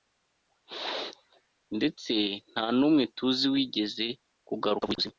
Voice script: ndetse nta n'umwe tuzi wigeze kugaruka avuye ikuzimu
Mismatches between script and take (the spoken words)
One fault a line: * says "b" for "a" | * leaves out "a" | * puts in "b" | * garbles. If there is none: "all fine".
all fine